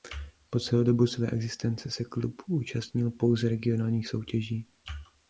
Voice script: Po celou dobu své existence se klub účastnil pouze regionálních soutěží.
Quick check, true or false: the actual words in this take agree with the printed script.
true